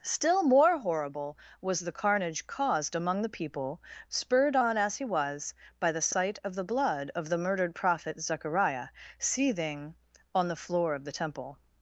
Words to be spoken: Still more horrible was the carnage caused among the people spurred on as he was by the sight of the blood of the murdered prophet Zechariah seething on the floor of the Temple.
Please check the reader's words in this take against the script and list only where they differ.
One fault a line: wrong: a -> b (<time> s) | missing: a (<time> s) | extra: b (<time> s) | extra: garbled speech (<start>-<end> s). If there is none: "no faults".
no faults